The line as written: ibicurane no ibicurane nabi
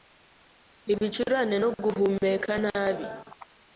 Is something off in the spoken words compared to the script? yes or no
yes